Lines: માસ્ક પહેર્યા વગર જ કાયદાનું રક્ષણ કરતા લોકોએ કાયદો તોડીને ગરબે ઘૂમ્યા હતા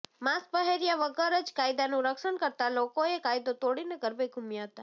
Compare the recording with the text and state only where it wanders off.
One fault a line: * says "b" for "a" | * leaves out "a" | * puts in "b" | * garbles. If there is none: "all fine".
all fine